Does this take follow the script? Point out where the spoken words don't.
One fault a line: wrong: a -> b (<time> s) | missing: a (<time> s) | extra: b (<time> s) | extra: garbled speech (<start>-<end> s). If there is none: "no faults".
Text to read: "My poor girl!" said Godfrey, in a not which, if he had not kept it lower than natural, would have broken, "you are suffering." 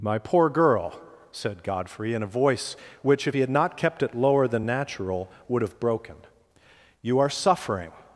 wrong: not -> voice (2.3 s)